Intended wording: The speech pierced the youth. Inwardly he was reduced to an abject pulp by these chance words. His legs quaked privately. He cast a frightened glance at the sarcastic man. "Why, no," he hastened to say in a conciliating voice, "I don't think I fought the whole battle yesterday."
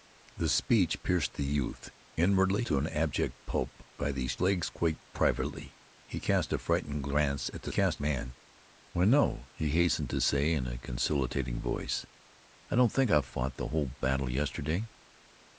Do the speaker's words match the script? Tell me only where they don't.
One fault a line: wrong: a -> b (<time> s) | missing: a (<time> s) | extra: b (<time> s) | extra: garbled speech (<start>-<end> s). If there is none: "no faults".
missing: he was reduced (2.6 s)
missing: chance words His (4.4 s)
wrong: sarcastic -> cast (7.7 s)